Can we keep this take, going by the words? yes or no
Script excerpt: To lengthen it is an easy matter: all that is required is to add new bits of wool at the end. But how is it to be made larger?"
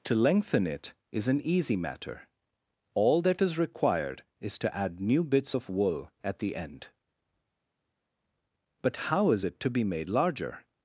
yes